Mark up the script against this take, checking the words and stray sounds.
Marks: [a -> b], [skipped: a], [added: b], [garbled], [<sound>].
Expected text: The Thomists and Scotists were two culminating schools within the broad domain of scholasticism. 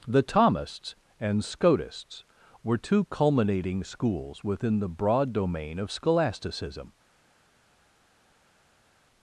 The Thomists and Scotists were two culminating schools within the broad domain of scholasticism.